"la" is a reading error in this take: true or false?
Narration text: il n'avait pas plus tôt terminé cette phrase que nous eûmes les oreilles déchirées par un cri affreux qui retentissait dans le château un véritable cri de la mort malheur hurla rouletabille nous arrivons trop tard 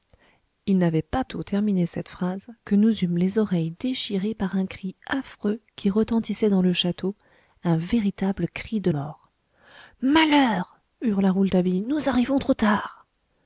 true